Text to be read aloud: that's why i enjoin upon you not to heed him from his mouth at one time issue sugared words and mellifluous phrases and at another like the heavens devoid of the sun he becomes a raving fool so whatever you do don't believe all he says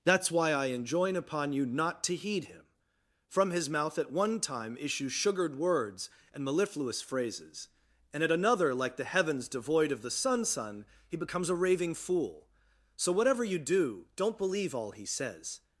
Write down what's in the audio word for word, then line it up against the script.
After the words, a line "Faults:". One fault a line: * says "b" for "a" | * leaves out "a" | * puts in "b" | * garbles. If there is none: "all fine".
that's why i enjoin upon you not to heed him from his mouth at one time issue sugared words and mellifluous phrases and at another like the heavens devoid of the sun sun he becomes a raving fool so whatever you do don't believe all he says
Faults:
* puts in "sun"